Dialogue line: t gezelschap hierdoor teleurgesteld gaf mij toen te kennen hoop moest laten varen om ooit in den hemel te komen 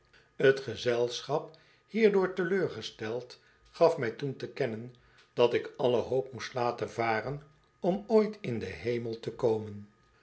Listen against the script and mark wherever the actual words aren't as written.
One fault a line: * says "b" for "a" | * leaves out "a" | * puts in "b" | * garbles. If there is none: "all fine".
* puts in "dat ik alle"